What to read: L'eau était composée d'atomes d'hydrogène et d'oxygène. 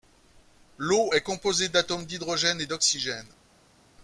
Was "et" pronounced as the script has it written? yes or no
yes